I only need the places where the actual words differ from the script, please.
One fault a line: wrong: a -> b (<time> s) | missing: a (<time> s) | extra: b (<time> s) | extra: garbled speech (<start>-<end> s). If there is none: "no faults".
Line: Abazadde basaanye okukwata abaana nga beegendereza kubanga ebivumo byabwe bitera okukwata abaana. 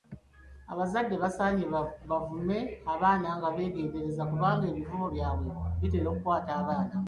wrong: okukwata -> bavume (2.1 s)